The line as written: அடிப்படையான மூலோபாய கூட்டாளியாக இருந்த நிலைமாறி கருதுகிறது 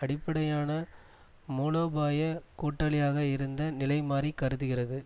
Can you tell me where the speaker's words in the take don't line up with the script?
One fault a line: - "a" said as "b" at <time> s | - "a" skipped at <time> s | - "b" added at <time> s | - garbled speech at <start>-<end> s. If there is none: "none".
none